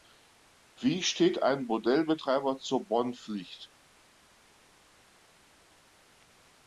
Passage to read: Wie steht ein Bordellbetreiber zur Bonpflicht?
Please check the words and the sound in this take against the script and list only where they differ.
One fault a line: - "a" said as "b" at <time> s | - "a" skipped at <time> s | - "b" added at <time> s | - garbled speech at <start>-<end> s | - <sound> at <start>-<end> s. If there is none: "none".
none